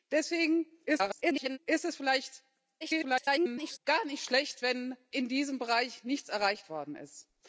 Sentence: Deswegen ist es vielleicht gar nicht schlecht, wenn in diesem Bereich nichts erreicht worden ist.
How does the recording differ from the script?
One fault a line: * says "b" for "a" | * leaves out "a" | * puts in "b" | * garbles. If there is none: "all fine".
* garbles
* garbles